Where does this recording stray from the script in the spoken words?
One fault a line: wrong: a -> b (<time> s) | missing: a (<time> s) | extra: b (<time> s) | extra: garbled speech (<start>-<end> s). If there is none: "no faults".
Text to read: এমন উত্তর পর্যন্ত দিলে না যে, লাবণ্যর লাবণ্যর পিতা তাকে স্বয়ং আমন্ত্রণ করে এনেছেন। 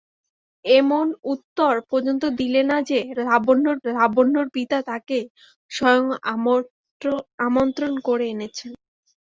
no faults